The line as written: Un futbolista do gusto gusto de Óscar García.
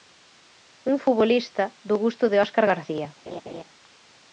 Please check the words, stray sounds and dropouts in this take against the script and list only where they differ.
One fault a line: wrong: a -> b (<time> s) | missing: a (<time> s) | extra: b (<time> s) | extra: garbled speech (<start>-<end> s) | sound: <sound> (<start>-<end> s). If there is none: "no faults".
missing: gusto (2.2 s)
sound: laugh (3.3-3.6 s)